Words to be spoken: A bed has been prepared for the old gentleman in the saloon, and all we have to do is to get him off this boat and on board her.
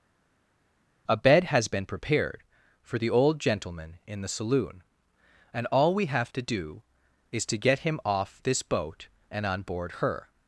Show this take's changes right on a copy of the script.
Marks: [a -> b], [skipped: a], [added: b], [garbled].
A bed has been prepared for the old gentleman in the saloon, and all we have to do is to get him off this boat and on board her.